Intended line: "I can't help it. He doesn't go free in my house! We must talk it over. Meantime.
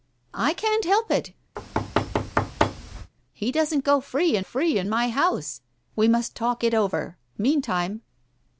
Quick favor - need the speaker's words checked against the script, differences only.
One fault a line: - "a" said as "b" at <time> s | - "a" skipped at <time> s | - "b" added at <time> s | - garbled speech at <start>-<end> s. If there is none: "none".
- "free in" added at 4.4 s